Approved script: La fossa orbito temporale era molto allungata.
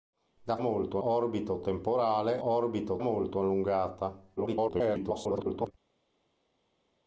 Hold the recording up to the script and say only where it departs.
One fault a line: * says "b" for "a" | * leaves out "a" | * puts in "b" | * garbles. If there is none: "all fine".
* says "molto" for "fossa"
* says "orbito" for "era"
* garbles